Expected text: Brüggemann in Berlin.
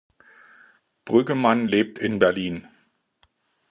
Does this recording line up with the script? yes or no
no